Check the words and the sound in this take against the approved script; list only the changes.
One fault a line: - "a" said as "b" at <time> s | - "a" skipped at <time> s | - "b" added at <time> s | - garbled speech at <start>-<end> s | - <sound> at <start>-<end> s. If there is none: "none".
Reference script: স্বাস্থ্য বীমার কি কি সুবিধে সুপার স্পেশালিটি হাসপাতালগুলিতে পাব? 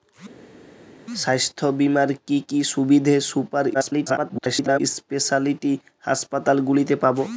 - garbled speech at 3.7-4.8 s